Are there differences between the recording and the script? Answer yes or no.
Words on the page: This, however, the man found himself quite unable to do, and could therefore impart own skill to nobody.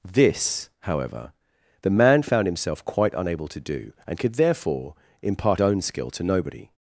no